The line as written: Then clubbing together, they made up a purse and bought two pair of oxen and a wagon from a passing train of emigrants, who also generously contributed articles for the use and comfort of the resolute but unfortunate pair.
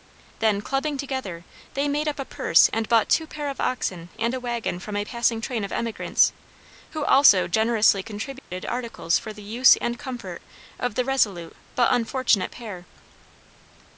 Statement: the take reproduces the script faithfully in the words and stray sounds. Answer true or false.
false